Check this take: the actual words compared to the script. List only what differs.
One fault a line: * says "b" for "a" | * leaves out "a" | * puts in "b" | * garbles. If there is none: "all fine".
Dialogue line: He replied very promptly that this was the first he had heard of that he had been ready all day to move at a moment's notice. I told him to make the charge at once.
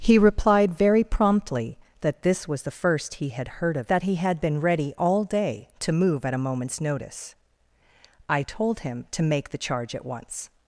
all fine